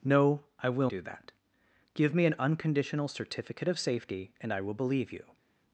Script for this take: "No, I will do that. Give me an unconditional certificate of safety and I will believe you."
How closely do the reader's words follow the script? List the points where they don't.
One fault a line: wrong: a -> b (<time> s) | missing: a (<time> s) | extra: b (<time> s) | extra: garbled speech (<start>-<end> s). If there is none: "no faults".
no faults